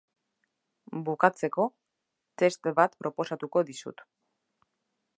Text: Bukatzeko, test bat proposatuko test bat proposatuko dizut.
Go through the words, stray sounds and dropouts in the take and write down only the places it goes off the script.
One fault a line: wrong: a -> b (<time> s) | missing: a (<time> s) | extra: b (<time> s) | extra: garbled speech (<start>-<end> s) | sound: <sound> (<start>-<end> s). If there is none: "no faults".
missing: test bat proposatuko (3.7 s)